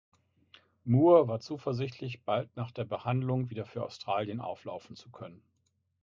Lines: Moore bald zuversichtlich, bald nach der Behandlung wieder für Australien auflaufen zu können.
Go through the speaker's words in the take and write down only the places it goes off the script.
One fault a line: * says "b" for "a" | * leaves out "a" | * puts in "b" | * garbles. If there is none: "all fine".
* says "war" for "bald"